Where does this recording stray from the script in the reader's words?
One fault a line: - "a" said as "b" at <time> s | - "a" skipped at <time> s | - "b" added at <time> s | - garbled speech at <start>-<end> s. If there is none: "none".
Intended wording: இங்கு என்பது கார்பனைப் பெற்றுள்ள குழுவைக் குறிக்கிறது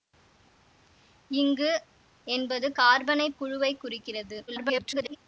- "பெற்றுள்ள" skipped at 3.4 s
- garbled speech at 4.5-5.2 s